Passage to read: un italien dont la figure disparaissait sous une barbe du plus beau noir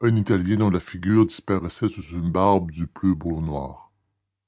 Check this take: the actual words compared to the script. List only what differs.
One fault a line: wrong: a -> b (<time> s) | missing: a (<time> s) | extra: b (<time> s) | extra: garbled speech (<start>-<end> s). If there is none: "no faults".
no faults